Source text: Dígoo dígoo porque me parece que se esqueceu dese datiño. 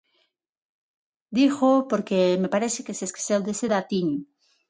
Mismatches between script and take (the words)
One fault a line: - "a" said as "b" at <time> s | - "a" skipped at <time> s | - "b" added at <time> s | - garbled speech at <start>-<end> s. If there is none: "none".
- "dígoo" skipped at 1.8 s